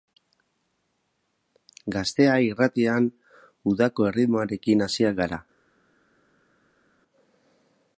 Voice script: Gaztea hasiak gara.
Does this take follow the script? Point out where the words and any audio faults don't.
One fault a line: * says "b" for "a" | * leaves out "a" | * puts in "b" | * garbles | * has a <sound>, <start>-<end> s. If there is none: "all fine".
* puts in "irratian udako erritmoarekin"